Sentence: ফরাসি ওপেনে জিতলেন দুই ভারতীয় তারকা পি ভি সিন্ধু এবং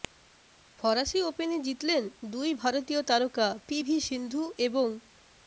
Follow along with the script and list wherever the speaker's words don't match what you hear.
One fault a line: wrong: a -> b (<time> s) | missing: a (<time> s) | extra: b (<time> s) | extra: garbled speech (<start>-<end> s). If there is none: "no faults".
no faults